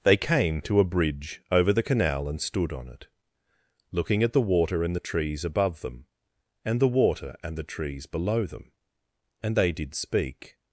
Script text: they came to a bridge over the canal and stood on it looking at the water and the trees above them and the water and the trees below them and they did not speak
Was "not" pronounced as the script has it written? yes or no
no